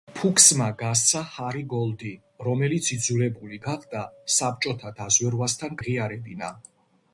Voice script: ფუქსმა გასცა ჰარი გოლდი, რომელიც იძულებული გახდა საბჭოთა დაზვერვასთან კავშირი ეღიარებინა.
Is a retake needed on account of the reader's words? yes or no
yes